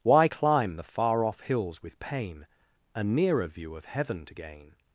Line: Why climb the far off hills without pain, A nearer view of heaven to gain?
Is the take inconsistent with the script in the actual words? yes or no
yes